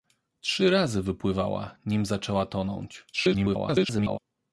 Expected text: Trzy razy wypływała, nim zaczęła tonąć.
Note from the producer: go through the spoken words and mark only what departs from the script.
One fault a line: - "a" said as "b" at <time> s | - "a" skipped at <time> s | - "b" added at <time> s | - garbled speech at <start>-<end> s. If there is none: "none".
- garbled speech at 3.1-4.2 s